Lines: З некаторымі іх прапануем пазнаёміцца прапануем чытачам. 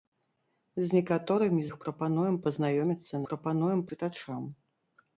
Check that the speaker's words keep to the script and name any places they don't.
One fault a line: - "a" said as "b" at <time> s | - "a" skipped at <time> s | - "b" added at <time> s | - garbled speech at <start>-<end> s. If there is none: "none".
none